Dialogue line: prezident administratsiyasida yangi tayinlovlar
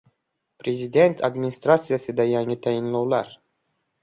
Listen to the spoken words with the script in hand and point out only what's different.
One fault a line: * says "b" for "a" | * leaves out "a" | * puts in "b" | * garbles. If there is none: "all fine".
all fine